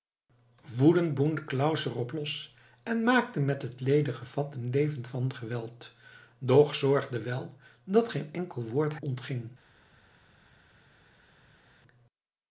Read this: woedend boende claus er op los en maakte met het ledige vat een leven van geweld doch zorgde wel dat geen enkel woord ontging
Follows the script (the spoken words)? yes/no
yes